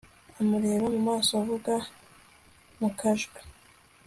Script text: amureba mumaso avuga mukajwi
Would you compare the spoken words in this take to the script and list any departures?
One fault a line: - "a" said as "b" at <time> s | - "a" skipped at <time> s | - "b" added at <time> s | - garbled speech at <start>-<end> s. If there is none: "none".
none